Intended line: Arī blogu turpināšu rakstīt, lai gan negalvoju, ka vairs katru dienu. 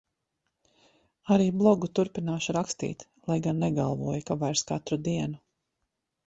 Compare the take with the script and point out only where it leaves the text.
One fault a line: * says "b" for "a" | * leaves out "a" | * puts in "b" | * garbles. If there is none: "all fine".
all fine